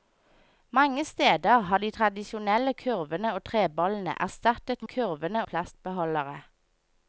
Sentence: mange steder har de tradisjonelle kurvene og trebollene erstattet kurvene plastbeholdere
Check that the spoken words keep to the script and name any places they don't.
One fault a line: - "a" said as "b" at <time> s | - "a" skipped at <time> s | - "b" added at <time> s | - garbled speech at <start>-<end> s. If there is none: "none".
none